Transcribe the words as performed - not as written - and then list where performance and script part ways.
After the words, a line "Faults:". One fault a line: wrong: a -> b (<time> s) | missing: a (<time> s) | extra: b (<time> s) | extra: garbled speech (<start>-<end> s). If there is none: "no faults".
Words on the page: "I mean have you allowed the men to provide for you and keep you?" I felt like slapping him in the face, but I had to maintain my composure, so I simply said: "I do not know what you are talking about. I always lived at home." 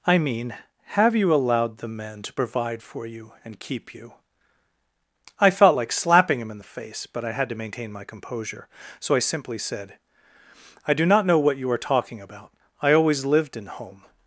"I mean have you allowed the men to provide for you and keep you?" I felt like slapping him in the face, but I had to maintain my composure, so I simply said: "I do not know what you are talking about. I always lived in home."
Faults:
wrong: at -> in (13.6 s)